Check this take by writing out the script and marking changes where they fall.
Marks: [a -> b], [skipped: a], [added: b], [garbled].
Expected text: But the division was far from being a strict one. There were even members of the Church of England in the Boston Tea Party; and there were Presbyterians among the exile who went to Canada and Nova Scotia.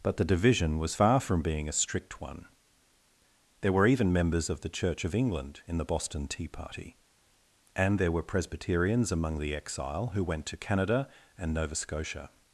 But the division was far from being a strict one. There were even members of the Church of England in the Boston Tea Party; and there were Presbyterians among the exile who went to Canada and Nova Scotia.